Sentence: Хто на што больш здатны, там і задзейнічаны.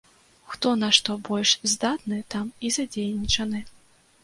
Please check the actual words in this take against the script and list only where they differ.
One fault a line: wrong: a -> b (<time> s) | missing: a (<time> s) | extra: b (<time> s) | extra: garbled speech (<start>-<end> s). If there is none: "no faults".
no faults